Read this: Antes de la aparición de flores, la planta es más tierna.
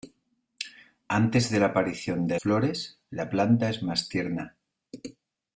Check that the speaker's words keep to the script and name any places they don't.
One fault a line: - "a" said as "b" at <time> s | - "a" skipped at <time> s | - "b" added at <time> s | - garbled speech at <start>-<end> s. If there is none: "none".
none